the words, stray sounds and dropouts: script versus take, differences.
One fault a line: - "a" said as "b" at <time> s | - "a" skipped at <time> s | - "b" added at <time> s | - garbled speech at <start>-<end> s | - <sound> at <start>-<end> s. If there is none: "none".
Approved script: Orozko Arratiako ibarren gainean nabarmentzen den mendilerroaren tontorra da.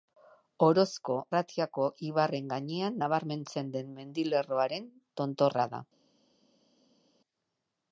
none